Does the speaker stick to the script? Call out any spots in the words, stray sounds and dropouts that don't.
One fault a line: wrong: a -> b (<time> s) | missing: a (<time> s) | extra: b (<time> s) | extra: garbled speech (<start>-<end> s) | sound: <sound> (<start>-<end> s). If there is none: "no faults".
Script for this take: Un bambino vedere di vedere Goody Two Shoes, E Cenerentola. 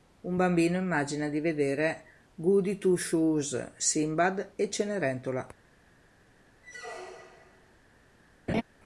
wrong: vedere -> immagina (0.8 s)
extra: Sinbad (3.8 s)
sound: squeak (6.6-7.7 s)
sound: laugh (8.5-8.6 s)